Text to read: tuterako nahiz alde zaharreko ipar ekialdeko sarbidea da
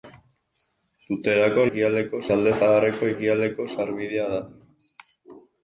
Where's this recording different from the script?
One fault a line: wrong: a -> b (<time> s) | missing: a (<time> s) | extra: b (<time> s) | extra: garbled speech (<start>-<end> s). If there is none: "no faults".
wrong: nahiz -> ekialdeko (1.7 s)
missing: ipar (3.1 s)